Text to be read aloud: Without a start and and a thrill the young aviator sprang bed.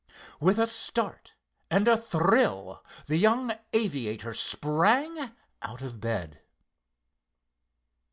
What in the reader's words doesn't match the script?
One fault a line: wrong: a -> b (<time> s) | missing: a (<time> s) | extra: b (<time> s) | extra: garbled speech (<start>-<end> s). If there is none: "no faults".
wrong: Without -> With (0.4 s)
missing: and (1.9 s)
extra: out of (5.6 s)